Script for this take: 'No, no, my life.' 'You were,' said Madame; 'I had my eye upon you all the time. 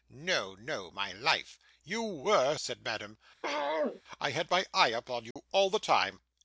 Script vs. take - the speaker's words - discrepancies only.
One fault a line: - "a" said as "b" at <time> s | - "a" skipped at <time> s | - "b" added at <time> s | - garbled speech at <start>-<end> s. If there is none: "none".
none